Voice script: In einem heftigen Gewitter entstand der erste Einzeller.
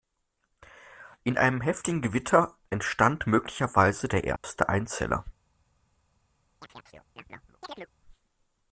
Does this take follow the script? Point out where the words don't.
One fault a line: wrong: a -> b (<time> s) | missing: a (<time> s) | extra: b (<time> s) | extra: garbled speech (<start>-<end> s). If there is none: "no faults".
extra: möglicherweise (3.3 s)